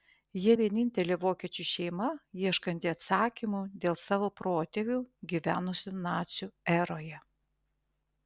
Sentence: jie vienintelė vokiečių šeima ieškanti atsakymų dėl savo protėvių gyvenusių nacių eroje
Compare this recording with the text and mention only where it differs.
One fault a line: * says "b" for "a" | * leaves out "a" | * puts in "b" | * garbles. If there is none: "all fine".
all fine